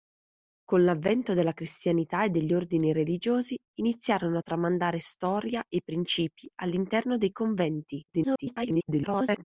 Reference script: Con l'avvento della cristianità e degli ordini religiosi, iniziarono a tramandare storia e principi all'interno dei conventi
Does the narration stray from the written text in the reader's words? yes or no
yes